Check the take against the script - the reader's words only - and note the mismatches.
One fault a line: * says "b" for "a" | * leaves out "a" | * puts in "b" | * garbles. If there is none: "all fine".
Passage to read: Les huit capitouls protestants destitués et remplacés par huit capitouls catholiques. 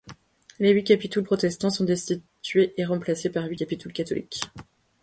* puts in "sont"